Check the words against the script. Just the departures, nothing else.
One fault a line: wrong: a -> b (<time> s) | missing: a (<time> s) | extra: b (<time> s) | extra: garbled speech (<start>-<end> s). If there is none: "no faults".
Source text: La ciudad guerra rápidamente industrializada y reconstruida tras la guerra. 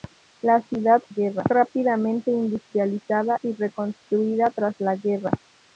no faults